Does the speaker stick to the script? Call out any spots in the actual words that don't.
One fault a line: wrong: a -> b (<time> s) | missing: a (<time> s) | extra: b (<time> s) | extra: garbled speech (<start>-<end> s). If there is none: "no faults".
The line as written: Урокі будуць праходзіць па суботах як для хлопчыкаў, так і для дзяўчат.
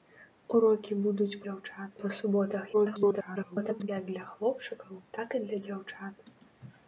wrong: праходзіць -> дзяўчат (1.5 s)
extra: garbled speech (2.7-3.9 s)